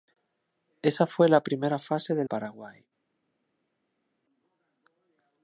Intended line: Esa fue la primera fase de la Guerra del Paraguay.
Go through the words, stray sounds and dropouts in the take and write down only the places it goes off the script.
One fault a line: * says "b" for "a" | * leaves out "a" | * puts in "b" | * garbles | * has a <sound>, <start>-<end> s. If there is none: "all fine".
* leaves out "la Guerra del"